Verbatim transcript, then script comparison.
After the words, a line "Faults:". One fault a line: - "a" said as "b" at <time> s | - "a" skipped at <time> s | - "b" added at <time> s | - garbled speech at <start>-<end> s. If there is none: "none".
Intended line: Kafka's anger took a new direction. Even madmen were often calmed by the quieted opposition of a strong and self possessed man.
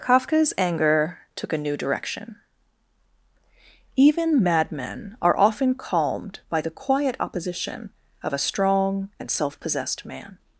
Kafka's anger took a new direction. Even madmen are often calmed by the quiet opposition of a strong and self possessed man.
Faults:
- "were" said as "are" at 5.2 s
- "quieted" said as "quiet" at 6.7 s